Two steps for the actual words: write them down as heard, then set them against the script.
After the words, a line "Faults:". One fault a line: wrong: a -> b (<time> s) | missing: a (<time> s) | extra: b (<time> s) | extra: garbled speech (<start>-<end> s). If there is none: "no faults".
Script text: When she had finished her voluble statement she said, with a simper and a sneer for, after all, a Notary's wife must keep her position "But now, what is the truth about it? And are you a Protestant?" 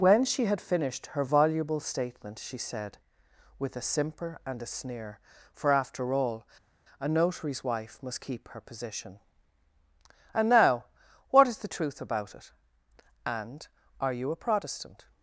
When she had finished her voluble statement she said, with a simper and a sneer for, after all, a Notary's wife must keep her position "And now, what is the truth about it? And are you a Protestant?"
Faults:
wrong: But -> And (10.3 s)